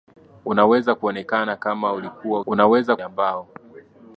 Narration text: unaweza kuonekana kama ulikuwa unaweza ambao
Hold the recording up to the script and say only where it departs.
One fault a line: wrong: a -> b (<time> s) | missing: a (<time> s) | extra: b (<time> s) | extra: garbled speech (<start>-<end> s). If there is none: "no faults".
no faults